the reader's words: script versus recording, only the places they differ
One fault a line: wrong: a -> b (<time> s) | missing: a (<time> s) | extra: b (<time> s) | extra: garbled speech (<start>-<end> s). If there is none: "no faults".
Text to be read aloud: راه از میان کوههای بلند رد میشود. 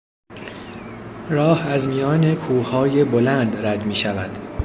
no faults